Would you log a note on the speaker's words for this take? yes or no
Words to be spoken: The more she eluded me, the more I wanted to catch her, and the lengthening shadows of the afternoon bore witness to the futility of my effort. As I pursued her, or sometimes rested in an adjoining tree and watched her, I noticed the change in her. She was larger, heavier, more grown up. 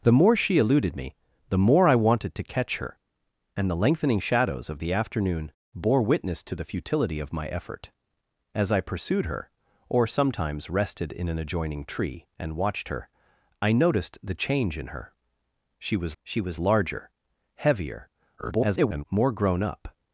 yes